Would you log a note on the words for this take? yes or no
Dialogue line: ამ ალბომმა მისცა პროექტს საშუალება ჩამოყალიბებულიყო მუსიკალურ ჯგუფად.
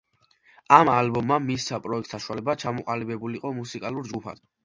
no